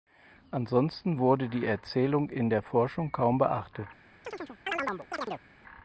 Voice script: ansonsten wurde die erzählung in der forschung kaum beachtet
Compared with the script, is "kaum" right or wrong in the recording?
right